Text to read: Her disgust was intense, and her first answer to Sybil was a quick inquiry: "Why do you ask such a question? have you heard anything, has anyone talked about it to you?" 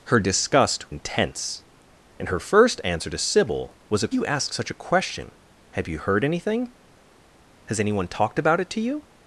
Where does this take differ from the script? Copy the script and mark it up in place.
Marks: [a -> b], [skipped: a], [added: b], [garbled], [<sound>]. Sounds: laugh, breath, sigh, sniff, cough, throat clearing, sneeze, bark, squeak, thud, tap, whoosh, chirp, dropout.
Her disgust [skipped: was] intense, and her first answer to Sybil was a [skipped: quick inquiry: "Why] do you ask such a question? have you heard anything, has anyone talked about it to you?"